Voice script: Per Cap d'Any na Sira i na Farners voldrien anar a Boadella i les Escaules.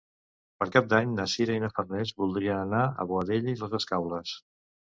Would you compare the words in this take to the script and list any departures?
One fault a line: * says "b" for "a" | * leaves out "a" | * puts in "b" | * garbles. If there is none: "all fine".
all fine